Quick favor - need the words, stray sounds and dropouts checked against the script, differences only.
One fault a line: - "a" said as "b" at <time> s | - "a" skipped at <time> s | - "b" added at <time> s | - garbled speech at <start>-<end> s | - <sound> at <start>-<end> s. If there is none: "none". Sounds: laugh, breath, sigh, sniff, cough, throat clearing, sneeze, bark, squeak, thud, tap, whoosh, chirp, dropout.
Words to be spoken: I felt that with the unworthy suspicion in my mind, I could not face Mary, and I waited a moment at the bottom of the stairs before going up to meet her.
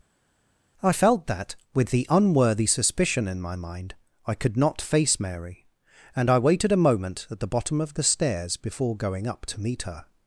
none